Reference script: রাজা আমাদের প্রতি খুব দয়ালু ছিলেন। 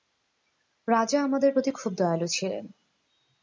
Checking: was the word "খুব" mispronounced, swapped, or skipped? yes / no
no